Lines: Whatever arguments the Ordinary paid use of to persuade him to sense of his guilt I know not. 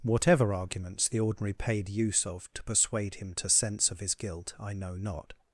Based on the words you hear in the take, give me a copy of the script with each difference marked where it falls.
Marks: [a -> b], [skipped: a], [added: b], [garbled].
Whatever arguments the Ordinary paid use of to persuade him to sense of his guilt I know not.